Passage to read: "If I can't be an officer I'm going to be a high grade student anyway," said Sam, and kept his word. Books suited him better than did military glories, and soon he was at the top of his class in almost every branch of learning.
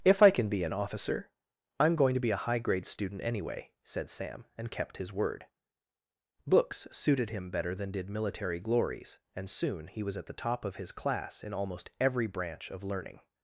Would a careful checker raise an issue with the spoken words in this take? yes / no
yes